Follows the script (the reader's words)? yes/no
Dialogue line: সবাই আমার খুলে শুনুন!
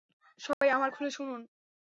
yes